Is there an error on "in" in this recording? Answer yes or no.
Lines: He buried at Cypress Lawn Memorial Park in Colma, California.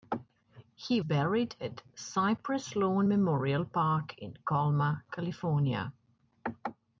no